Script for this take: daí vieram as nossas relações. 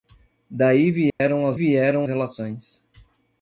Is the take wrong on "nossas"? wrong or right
wrong